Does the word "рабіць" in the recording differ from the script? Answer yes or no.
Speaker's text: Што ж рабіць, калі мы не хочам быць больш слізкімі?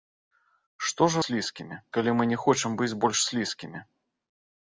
yes